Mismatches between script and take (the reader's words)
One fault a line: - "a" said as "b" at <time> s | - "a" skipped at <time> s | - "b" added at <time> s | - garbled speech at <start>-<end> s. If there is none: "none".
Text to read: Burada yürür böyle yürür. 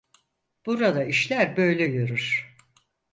- "yürür" said as "işler" at 1.0 s